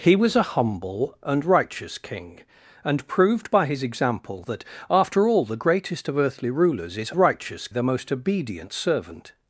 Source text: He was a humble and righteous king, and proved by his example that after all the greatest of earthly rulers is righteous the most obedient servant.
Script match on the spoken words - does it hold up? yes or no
yes